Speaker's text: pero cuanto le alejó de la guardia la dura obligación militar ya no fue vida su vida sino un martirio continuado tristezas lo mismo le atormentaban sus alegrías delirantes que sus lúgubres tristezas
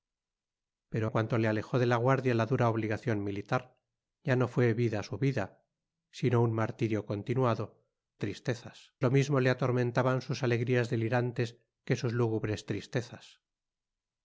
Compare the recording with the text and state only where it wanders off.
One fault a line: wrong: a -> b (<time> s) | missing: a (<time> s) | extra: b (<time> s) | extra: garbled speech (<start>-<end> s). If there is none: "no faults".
no faults